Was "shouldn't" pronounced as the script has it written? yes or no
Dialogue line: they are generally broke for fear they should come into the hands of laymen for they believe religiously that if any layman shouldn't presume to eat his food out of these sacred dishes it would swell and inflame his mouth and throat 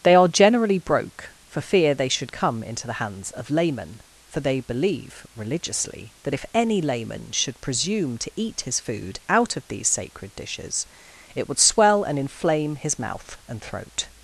no